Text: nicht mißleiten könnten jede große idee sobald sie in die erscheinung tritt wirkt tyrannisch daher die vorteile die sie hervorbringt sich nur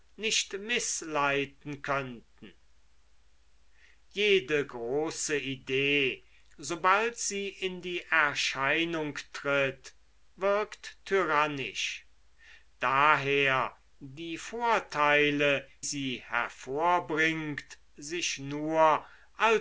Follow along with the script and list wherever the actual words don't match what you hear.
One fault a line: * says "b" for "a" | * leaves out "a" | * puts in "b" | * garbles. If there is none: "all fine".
* leaves out "die"